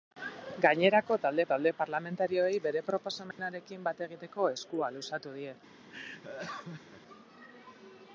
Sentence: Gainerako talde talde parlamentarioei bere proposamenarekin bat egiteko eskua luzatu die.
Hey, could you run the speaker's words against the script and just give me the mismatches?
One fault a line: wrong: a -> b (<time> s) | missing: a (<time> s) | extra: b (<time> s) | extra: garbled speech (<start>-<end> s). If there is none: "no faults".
no faults